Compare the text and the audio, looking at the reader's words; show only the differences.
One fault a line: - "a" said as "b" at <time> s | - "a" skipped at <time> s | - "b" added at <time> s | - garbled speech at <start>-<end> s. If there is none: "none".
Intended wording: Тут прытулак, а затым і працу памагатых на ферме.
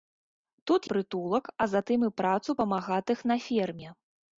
none